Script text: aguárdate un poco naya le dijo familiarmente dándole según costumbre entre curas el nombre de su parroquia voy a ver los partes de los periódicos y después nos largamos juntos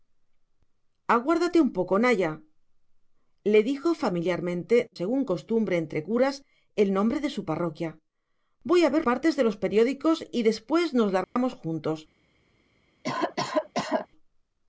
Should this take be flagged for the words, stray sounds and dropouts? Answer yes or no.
yes